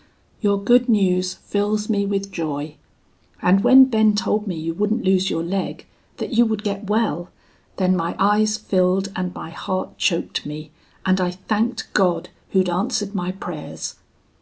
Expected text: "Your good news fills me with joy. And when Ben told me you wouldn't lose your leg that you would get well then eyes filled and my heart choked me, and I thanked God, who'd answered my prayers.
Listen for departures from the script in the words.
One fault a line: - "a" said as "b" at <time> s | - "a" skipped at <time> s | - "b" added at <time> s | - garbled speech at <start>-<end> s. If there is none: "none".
- "my" added at 8.0 s